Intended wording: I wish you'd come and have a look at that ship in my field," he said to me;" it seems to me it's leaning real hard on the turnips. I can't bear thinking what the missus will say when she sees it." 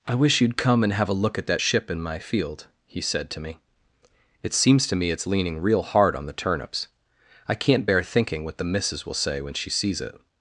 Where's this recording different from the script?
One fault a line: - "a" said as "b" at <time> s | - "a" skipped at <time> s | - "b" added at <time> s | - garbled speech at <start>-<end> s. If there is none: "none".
none